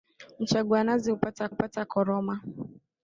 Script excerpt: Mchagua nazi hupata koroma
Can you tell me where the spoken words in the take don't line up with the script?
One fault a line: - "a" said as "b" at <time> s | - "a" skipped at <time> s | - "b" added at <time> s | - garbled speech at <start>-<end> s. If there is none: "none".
- "hupata" added at 1.5 s